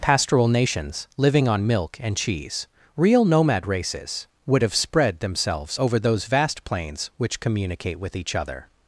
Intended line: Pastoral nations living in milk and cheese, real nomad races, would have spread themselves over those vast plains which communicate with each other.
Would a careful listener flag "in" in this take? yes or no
yes